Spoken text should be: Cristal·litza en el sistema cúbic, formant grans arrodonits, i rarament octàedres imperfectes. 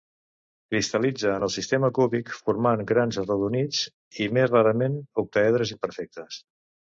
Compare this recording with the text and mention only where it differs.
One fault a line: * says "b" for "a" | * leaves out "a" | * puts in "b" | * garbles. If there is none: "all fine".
* puts in "més"